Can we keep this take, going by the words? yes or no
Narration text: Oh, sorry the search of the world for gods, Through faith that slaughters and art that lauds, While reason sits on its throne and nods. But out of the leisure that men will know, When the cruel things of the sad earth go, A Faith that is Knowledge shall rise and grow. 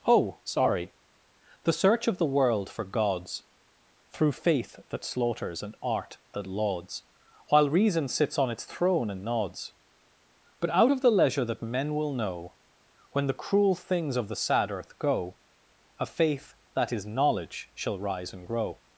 yes